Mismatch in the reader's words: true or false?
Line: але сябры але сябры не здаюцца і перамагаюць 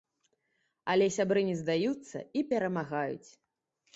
true